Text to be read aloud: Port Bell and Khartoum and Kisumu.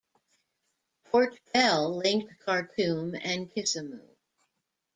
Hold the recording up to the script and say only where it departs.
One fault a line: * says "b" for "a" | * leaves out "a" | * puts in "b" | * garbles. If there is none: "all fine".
* says "linked" for "and"